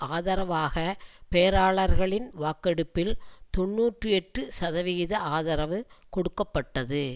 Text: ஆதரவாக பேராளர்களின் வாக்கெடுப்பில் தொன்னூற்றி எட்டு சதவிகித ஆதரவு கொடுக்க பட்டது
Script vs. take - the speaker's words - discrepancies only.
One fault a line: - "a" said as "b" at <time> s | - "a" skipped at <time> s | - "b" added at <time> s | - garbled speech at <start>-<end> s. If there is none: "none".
none